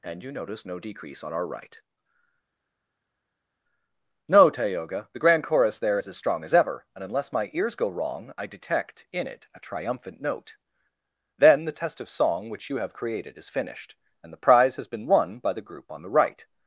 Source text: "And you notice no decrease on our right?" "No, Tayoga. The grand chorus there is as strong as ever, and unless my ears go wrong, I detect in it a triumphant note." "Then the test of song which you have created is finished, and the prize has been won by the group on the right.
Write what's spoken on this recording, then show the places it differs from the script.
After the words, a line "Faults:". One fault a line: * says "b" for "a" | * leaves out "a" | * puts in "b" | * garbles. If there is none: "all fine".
"And you notice no decrease on our right?" "No, Tayoga. The grand chorus there is as strong as ever, and unless my ears go wrong, I detect in it a triumphant note." "Then the test of song which you have created is finished, and the prize has been won by the group on the right.
Faults:
all fine